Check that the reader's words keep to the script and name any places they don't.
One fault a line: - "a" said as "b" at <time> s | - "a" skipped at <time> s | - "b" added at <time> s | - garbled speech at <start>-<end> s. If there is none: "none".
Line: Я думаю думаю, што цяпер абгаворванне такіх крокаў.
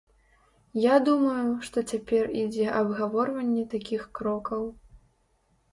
- "думаю" skipped at 1.5 s
- "ідзе" added at 2.5 s